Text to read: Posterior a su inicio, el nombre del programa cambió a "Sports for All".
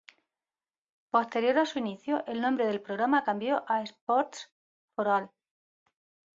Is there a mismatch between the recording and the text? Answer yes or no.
no